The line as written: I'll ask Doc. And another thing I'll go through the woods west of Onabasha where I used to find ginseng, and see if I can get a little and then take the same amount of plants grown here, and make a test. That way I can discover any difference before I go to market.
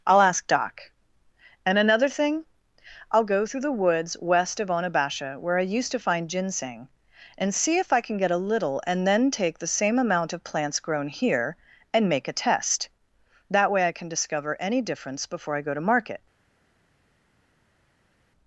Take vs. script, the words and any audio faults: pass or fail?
pass